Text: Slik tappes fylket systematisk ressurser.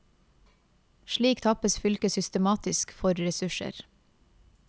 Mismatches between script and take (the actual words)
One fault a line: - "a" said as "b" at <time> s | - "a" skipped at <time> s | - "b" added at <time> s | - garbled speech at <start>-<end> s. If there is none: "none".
- "for" added at 2.9 s